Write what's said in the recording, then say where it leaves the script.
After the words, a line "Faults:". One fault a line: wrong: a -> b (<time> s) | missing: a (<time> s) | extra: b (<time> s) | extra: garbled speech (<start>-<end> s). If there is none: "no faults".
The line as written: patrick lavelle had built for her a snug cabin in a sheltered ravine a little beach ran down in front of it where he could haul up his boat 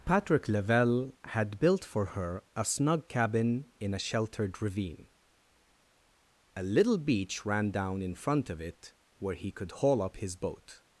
patrick lavelle had built for her a snug cabin in a sheltered ravine a little beach ran down in front of it where he could haul up his boat
Faults:
no faults